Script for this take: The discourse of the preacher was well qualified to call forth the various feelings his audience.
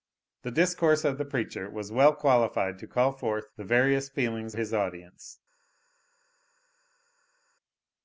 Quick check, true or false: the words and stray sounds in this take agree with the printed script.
true